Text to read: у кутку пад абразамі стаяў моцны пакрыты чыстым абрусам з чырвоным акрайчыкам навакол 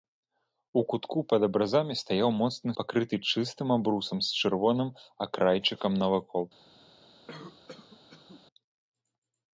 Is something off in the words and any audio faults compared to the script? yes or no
yes